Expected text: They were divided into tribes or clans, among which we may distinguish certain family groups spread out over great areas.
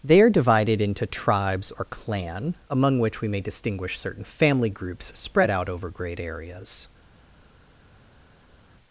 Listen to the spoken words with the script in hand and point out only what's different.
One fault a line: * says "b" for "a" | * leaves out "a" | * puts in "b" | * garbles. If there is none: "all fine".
* says "are" for "were"
* says "clan" for "clans"